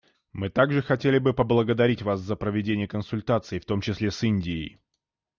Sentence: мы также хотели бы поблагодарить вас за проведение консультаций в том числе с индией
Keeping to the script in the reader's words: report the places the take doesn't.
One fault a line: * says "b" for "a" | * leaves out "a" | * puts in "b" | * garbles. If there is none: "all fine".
all fine